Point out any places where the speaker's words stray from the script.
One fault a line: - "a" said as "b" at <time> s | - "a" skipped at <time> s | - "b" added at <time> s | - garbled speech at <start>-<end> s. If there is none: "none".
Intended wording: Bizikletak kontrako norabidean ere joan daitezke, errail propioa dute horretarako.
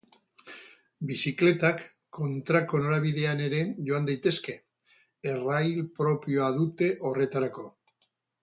none